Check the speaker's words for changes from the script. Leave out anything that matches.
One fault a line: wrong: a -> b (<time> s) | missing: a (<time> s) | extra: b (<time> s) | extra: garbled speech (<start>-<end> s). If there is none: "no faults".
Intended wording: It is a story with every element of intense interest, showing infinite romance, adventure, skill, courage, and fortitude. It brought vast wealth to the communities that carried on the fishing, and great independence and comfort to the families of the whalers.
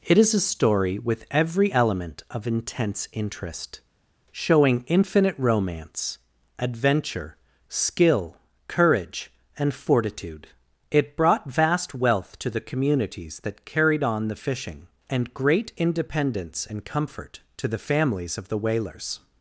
no faults